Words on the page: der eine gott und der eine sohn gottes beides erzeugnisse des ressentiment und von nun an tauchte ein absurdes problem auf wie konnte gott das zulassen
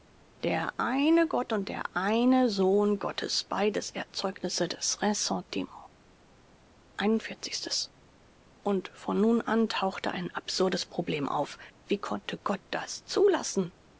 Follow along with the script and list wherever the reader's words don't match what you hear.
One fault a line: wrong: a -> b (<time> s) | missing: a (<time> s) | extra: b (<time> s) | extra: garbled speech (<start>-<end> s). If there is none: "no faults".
no faults